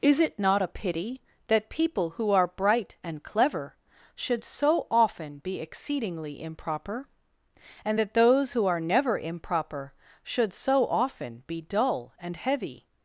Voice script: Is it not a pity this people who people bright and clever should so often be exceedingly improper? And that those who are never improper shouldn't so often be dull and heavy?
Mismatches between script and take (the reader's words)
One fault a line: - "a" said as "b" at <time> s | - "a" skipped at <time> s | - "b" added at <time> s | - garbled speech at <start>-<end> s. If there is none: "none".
- "this" said as "that" at 1.4 s
- "people" said as "are" at 2.3 s
- "shouldn't" said as "should" at 10.2 s